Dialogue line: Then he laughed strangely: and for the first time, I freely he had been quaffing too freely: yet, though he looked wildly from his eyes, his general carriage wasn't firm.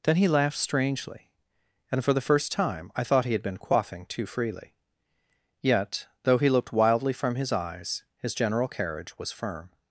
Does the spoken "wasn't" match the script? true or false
false